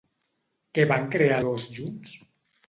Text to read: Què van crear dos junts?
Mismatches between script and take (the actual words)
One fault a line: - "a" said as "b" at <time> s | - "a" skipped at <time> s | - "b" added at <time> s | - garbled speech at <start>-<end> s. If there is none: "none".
none